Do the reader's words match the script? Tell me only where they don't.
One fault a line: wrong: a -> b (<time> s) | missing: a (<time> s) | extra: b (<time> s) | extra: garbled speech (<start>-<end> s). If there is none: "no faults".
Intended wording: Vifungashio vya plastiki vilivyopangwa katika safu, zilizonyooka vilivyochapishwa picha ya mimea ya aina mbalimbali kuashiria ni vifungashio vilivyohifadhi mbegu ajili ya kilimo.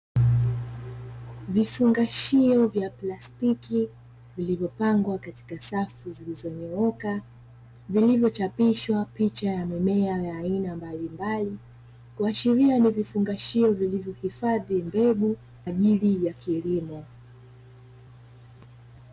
no faults